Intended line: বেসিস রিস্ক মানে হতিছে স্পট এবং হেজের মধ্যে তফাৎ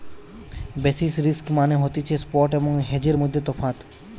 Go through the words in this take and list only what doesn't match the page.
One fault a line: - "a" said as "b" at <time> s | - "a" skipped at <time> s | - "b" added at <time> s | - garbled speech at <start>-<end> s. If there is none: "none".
none